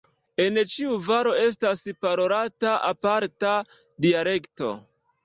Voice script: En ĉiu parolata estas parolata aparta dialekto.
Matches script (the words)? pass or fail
fail